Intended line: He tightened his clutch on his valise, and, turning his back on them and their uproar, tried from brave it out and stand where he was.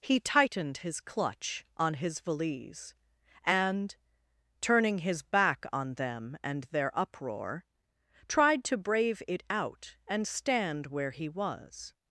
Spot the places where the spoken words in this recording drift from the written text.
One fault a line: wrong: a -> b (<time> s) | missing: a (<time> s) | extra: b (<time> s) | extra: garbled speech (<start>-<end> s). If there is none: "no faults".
wrong: from -> to (8.7 s)